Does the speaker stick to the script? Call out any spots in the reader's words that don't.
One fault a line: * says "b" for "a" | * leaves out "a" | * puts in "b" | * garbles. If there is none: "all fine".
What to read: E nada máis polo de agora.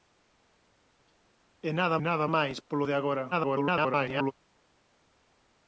* puts in "nada"
* garbles